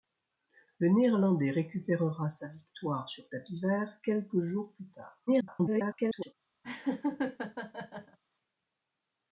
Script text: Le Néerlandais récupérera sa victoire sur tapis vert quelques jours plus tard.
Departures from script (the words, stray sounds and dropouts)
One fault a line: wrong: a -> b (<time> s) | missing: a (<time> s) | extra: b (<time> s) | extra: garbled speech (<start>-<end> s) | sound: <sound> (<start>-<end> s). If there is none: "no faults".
extra: garbled speech (5.3-6.3 s)
sound: laugh (6.6-8.2 s)